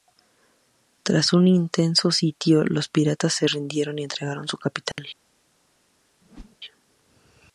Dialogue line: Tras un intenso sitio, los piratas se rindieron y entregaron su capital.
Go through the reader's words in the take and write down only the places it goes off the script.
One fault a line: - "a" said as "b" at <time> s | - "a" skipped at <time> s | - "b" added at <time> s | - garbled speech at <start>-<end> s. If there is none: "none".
none